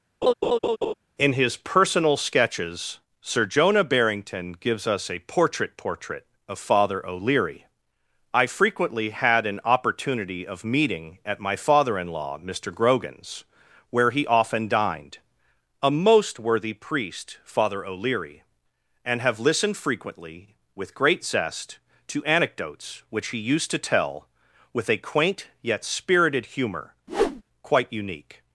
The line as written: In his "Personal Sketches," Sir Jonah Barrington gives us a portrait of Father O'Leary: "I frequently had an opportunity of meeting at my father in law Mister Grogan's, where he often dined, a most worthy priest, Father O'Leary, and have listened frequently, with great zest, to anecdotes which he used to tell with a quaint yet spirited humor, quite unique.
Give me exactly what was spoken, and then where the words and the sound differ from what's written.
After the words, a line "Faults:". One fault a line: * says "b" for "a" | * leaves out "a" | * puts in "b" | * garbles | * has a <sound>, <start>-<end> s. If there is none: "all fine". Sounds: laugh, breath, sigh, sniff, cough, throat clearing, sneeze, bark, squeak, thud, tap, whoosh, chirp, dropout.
In his "Personal Sketches," Sir Jonah Barrington gives us a portrait portrait of Father O'Leary: "I frequently had an opportunity of meeting at my father in law Mister Grogan's, where he often dined, a most worthy priest, Father O'Leary, and have listened frequently, with great zest, to anecdotes which he used to tell with a quaint yet spirited humor, quite unique.
Faults:
* has a laugh, 0.2-0.9 s
* puts in "portrait"
* has a whoosh, 27.1-27.4 s